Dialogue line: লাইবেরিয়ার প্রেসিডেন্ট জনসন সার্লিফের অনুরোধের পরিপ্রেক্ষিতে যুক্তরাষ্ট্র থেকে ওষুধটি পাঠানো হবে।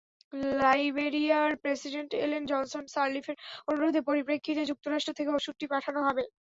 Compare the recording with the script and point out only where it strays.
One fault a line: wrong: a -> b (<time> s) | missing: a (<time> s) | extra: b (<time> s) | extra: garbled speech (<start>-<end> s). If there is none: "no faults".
extra: এলেন (2.2 s)